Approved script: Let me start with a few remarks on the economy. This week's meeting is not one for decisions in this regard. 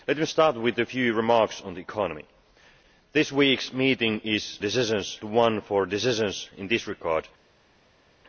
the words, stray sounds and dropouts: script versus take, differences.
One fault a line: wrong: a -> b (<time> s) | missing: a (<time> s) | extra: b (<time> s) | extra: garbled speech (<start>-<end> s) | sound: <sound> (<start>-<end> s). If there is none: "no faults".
wrong: not -> decisions (4.6 s)